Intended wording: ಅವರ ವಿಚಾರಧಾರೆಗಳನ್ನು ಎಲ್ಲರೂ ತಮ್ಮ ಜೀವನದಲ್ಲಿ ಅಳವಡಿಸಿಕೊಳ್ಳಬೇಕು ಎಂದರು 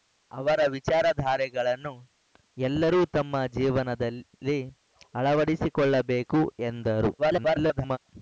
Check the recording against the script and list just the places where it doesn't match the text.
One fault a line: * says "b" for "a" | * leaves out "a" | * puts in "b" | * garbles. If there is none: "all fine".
* garbles